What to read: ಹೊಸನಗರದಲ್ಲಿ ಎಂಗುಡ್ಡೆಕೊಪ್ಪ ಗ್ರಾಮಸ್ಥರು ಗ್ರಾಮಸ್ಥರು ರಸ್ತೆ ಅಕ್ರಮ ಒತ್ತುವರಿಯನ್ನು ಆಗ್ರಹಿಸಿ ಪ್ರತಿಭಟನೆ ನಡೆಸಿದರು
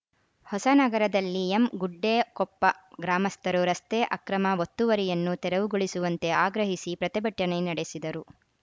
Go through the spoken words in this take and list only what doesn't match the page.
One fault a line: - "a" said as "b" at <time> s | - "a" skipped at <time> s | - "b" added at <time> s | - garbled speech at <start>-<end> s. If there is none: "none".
- "ಗ್ರಾಮಸ್ಥರು" skipped at 3.6 s
- "ತೆರವುಗೊಳಿಸುವಂತೆ" added at 5.5 s